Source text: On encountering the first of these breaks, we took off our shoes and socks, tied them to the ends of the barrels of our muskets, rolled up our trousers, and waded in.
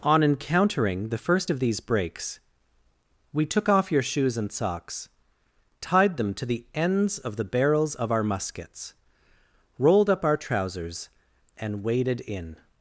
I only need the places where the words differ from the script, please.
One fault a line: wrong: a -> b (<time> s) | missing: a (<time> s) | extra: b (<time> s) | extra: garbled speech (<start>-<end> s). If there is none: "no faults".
wrong: our -> your (3.9 s)